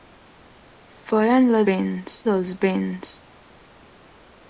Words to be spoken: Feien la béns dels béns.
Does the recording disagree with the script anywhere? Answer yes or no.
no